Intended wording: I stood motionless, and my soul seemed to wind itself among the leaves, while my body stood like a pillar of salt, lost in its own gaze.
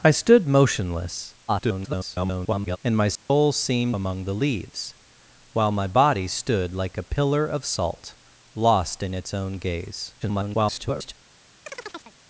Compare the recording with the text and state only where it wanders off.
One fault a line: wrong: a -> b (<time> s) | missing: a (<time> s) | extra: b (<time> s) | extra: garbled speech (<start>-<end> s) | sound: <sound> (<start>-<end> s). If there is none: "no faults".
extra: garbled speech (1.5-2.8 s)
sound: dropout (3.2-3.3 s)
missing: to wind itself (4.0 s)
extra: garbled speech (10.2-11.1 s)
sound: chirp (11.7-12.2 s)